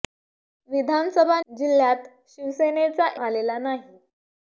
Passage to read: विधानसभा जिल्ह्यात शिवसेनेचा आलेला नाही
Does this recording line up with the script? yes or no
yes